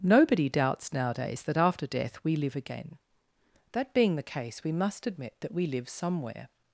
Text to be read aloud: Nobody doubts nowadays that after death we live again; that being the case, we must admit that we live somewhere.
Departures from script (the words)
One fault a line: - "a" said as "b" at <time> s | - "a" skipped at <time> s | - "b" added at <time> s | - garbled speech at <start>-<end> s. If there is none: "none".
none